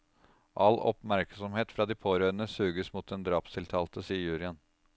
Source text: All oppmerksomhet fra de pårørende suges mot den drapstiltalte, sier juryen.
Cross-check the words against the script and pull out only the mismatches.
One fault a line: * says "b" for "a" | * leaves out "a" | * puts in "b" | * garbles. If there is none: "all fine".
all fine